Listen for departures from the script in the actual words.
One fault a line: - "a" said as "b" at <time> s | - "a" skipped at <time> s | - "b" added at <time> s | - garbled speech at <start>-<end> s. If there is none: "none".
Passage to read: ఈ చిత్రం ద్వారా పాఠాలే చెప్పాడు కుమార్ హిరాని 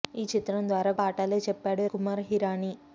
none